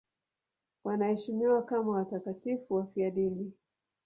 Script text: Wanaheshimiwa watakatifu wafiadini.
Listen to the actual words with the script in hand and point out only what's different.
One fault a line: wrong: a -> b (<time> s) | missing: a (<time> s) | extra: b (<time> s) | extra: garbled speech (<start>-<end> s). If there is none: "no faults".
extra: kama (1.6 s)